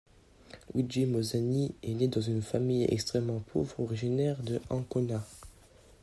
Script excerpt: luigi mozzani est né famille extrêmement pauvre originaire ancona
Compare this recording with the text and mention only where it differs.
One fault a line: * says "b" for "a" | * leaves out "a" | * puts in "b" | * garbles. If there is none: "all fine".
* puts in "dans une"
* puts in "de"